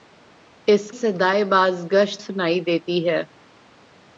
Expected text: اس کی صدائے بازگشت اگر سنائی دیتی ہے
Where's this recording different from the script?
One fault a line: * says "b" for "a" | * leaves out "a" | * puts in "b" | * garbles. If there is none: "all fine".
* leaves out "کی"
* leaves out "اگر"